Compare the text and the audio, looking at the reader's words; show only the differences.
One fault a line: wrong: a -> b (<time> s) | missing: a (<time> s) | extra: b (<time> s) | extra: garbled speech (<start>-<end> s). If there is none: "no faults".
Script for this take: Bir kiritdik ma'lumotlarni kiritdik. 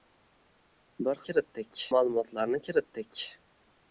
no faults